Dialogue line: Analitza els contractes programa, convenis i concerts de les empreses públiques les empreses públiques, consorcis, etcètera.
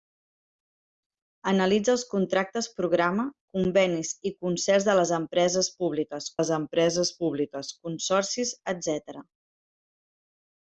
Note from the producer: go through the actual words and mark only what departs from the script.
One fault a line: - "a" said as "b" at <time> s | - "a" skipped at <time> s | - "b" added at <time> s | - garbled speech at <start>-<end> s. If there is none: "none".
none